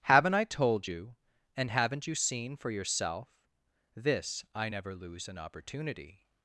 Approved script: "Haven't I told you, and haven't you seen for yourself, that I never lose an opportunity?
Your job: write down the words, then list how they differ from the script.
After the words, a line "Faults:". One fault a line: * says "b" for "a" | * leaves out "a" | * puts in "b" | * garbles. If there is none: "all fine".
"Haven't I told you, and haven't you seen for yourself, this I never lose an opportunity?
Faults:
* says "this" for "that"